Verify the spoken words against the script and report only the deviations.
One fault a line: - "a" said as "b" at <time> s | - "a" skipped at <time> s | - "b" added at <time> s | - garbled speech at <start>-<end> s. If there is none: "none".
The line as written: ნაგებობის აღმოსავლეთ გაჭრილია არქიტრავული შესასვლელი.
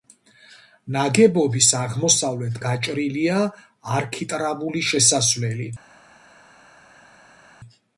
none